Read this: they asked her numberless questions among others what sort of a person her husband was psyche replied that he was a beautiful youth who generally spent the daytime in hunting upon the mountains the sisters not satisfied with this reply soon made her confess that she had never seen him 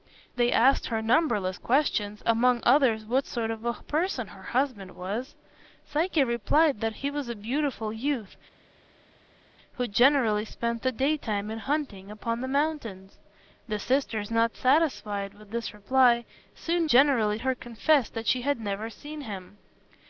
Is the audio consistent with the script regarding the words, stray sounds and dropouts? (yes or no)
no